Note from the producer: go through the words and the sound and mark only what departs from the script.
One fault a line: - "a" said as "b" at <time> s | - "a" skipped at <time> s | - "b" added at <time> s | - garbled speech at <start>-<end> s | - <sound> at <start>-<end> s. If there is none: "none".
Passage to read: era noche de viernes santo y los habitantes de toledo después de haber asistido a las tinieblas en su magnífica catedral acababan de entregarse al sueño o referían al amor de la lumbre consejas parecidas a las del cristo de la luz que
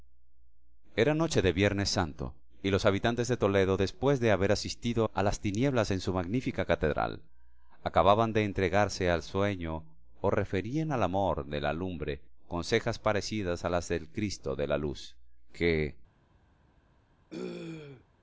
- throat clearing at 17.3-18.0 s